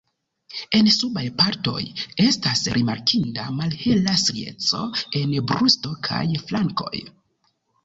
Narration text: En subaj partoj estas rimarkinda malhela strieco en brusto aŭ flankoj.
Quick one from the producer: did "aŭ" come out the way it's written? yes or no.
no